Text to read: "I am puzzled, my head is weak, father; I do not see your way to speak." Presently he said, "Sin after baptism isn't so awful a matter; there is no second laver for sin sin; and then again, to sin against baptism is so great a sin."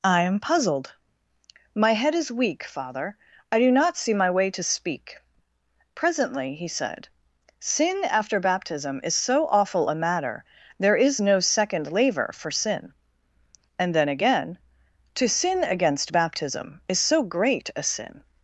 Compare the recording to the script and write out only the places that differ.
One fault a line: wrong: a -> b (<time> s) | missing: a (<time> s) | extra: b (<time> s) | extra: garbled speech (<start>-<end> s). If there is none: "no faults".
wrong: your -> my (4.2 s)
wrong: isn't -> is (9.0 s)
missing: sin (12.9 s)